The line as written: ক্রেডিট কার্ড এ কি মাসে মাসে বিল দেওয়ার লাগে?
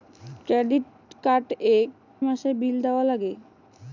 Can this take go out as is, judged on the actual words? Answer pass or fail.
fail